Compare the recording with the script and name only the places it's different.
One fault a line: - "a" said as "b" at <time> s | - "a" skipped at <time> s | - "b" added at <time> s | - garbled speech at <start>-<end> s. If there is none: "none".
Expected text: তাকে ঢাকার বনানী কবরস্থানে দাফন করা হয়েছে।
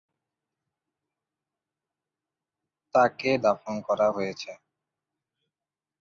- "ঢাকার বনানী কবরস্থানে" skipped at 3.3 s